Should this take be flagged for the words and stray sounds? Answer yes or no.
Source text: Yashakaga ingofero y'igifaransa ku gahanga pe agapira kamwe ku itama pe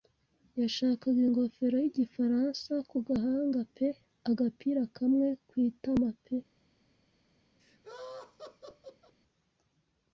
yes